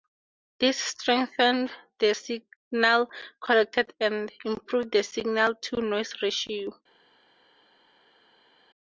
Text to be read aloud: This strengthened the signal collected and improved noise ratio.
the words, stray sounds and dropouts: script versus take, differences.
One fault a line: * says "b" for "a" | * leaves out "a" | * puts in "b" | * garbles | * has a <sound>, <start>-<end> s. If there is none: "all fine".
* puts in "the signal to"